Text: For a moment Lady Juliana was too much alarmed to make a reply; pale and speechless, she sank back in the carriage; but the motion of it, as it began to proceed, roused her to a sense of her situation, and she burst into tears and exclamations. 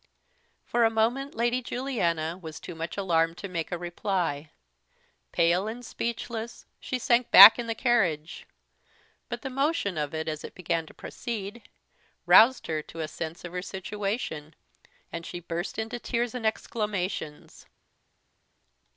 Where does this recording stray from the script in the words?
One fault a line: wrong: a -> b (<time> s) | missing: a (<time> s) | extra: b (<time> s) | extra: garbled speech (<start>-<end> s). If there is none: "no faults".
no faults